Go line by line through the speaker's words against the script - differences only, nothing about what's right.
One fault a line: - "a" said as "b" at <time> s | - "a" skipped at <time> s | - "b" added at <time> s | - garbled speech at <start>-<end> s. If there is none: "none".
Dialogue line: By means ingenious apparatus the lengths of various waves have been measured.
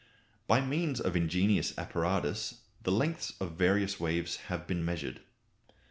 - "of" added at 1.0 s